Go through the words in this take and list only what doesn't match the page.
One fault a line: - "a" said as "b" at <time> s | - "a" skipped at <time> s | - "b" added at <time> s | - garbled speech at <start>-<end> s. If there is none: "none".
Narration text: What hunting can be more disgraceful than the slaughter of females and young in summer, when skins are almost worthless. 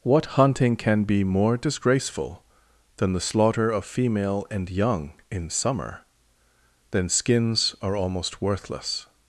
- "females" said as "female" at 3.8 s
- "when" said as "then" at 6.9 s